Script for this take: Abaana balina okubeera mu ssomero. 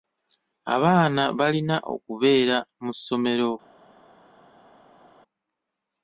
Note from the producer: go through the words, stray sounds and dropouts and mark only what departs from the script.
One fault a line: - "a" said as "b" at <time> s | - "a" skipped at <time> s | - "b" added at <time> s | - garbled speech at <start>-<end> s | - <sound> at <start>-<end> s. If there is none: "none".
none